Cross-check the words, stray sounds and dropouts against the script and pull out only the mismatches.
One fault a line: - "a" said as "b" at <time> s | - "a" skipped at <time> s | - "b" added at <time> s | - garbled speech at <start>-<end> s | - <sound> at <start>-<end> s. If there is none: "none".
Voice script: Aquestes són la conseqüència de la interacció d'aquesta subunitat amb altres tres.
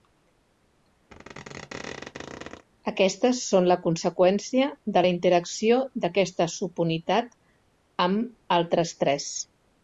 - squeak at 1.1-2.7 s